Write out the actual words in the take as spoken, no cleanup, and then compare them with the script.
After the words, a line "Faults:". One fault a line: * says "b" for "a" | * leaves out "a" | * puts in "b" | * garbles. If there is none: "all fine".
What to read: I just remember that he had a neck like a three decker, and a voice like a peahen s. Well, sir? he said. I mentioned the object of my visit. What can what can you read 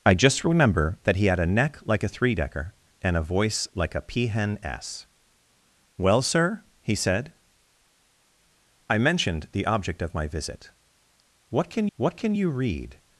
I just remember that he had a neck like a three decker, and a voice like a peahen s. Well, sir? he said. I mentioned the object of my visit. What can what can you read
Faults:
all fine